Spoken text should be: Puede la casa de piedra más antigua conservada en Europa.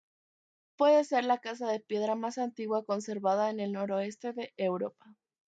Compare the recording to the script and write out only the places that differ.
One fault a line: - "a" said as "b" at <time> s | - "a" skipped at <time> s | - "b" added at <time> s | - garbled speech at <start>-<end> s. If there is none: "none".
- "ser" added at 1.0 s
- "el noroeste de" added at 3.6 s